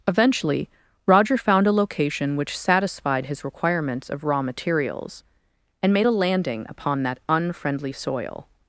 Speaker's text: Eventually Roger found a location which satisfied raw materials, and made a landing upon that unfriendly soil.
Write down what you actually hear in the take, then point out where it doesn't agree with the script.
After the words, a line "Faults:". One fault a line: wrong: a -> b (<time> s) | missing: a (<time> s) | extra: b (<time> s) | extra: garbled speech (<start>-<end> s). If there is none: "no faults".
Eventually Roger found a location which satisfied his requirements of raw materials, and made a landing upon that unfriendly soil.
Faults:
extra: his requirements of (3.2 s)